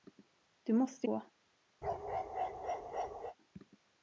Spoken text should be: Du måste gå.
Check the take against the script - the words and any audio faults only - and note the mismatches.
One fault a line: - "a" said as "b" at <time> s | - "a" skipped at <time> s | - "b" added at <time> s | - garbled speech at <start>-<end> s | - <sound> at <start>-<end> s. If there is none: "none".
- bark at 1.8-3.4 s